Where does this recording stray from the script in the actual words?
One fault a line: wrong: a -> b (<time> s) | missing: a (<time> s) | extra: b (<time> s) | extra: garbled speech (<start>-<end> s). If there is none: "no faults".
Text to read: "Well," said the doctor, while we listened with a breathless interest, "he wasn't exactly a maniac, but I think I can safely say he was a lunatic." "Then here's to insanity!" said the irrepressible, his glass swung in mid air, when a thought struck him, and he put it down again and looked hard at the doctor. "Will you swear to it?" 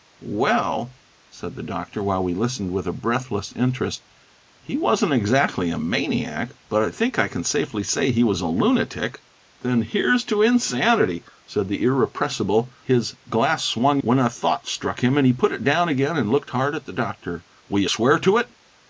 missing: in mid air (14.0 s)